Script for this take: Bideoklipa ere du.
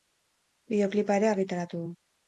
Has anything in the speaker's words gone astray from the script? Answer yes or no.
yes